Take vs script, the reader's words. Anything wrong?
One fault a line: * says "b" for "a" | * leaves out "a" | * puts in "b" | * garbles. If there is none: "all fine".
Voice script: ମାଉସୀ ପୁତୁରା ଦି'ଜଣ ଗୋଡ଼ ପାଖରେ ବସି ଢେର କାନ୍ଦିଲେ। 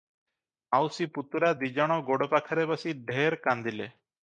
all fine